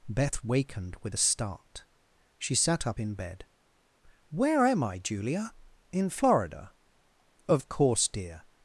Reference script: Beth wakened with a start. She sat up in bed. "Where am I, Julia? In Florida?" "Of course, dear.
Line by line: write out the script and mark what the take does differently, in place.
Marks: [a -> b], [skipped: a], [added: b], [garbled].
Beth wakened with a start. She sat up in bed. "Where am I, Julia? In Florida?" "Of course, dear.